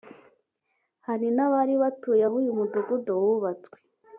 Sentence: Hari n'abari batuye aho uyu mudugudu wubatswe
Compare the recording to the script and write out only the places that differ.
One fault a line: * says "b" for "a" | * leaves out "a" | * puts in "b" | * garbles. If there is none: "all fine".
all fine